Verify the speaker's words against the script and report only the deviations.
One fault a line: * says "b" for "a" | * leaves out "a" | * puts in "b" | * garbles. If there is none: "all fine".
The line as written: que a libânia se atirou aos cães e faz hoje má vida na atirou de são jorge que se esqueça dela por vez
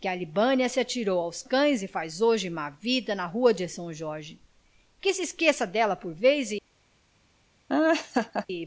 * says "rua" for "atirou"